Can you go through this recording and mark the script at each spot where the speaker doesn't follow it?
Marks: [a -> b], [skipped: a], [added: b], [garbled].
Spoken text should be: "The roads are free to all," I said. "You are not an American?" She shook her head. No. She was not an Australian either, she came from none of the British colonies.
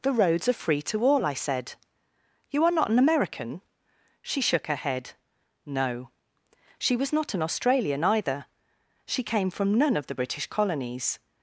"The roads are free to all," I said. "You are not an American?" She shook her head. No. She was not an Australian either, she came from none of the British colonies.